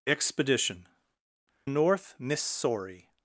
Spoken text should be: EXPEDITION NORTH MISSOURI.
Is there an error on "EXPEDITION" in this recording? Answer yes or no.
no